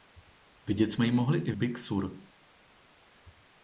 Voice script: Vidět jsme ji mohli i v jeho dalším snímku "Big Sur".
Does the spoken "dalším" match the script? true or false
false